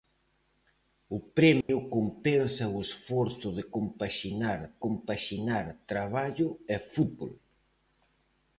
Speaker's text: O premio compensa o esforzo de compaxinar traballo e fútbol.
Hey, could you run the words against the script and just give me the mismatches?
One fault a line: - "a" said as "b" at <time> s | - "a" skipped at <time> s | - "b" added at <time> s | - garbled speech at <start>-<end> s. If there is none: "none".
- "compaxinar" added at 4.8 s